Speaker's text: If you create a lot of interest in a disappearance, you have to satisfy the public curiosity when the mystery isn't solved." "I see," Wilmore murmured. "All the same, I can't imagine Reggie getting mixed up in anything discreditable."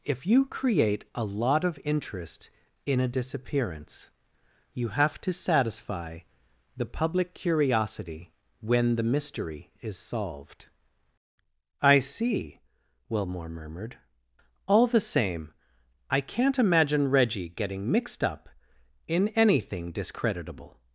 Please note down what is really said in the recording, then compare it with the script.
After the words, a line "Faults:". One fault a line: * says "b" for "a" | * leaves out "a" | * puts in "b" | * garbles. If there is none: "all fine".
If you create a lot of interest in a disappearance, you have to satisfy the public curiosity when the mystery is solved." "I see," Wilmore murmured. "All the same, I can't imagine Reggie getting mixed up in anything discreditable."
Faults:
* says "is" for "isn't"